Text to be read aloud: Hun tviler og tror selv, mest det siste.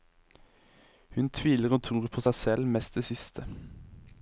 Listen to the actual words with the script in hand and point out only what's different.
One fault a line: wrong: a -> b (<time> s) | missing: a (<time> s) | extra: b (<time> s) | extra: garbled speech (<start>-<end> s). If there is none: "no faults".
extra: på seg (2.1 s)